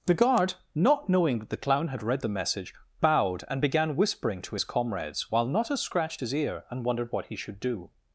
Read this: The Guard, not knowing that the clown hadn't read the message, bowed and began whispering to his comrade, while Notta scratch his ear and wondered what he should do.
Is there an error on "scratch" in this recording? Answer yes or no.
yes